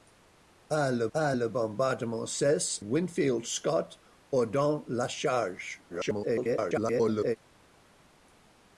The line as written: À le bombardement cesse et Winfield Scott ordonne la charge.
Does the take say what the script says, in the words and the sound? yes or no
no